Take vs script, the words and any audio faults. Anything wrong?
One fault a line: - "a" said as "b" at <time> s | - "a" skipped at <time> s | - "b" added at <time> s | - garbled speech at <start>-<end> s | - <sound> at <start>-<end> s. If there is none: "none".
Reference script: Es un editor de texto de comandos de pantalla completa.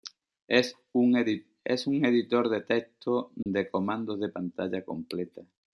- dropout at 3.4-3.5 s